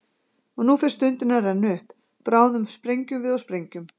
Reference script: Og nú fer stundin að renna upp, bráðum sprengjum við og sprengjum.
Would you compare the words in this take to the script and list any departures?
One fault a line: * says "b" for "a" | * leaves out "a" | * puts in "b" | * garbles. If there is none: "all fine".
all fine